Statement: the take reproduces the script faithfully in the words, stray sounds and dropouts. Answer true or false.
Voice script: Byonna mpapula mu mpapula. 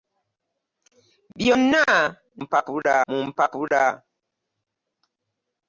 true